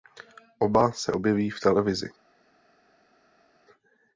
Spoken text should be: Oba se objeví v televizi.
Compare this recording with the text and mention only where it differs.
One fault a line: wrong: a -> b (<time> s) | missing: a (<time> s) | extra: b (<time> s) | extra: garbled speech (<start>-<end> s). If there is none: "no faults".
no faults